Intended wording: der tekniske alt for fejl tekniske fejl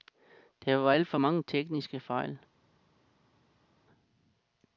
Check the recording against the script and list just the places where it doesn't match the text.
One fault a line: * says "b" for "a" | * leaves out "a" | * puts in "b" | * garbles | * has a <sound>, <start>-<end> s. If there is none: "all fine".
* says "var" for "tekniske"
* says "mange" for "fejl"